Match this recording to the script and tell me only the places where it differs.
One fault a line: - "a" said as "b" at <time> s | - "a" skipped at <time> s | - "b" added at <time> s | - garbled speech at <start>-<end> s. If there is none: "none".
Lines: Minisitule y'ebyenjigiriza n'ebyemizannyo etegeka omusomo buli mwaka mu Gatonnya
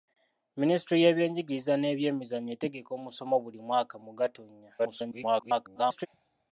- garbled speech at 4.8-6.1 s